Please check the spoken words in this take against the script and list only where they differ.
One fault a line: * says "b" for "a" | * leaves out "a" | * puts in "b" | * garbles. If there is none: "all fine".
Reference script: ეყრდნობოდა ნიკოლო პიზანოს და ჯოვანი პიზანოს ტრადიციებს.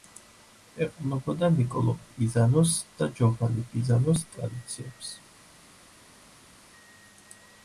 all fine